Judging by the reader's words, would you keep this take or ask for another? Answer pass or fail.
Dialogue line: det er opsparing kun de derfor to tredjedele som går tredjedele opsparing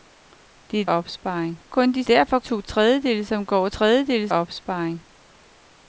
pass